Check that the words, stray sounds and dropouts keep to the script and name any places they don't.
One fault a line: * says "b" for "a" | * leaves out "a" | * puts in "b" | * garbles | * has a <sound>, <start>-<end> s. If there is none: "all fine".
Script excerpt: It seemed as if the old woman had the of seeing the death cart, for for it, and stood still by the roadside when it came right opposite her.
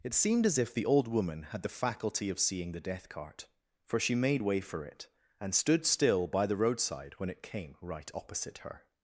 * puts in "faculty"
* puts in "she made way"